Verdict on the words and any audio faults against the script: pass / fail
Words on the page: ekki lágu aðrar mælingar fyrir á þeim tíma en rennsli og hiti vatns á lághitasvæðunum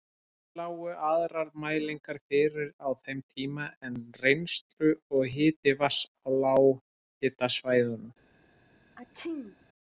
fail